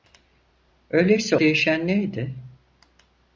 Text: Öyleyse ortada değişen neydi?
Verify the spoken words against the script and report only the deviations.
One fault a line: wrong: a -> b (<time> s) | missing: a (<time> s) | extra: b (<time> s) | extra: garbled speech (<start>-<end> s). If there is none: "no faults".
missing: ortada (1.4 s)